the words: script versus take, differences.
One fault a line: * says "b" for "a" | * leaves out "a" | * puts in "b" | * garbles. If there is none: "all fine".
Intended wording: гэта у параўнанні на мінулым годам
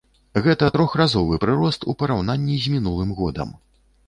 * puts in "трохразовы прырост"
* says "з" for "на"